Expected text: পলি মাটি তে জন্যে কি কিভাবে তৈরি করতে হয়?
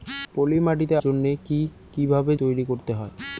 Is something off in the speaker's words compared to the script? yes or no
no